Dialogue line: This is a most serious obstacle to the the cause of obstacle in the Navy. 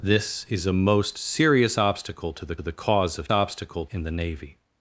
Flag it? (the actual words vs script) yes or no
no